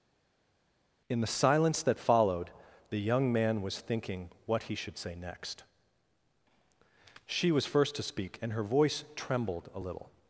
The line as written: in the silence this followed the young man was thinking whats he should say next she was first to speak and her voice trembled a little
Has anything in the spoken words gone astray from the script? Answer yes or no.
yes